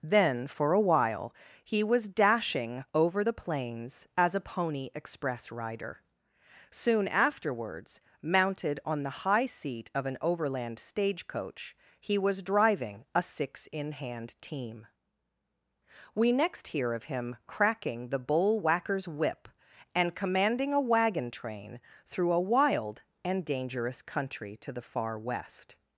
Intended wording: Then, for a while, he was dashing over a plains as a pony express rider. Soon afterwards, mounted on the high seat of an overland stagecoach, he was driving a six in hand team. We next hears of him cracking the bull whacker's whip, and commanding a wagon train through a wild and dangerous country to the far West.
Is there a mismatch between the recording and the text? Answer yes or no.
yes